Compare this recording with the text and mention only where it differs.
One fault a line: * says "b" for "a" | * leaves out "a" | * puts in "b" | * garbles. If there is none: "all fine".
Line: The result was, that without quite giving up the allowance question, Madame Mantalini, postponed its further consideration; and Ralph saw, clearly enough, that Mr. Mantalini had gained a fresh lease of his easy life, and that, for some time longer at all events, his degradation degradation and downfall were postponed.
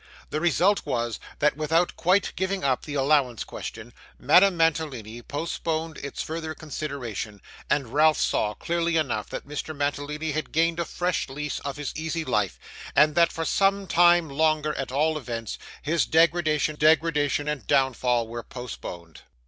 all fine